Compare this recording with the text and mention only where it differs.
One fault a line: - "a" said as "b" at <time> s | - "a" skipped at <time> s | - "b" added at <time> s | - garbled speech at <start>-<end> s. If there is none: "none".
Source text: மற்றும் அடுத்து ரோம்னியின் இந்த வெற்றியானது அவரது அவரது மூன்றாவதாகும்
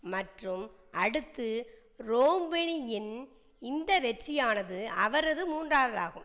- "அவரது" skipped at 5.4 s